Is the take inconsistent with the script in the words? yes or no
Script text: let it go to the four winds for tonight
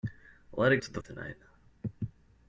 yes